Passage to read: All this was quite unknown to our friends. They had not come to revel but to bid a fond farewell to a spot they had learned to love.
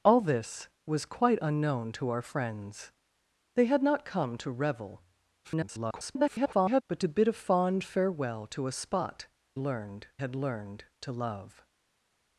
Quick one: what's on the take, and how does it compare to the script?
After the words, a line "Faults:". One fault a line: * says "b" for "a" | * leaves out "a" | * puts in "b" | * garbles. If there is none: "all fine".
All this was quite unknown to our friends. They had not come to revel [garbled] but to bid a fond farewell to a spot learned had learned to love.
Faults:
* garbles
* says "learned" for "they"